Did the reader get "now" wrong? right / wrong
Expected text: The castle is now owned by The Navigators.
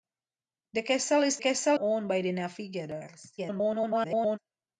wrong